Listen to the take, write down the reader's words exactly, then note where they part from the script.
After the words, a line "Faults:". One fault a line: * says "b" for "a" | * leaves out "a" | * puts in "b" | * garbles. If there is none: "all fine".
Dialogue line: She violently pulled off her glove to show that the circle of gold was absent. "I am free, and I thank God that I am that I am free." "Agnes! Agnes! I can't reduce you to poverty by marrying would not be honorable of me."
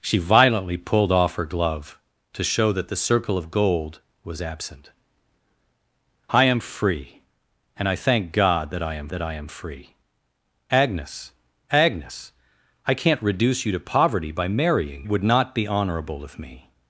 She violently pulled off her glove to show that the circle of gold was absent. "I am free, and I thank God that I am that I am free." "Agnes! Agnes! I can't reduce you to poverty by marrying would not be honorable of me."
Faults:
all fine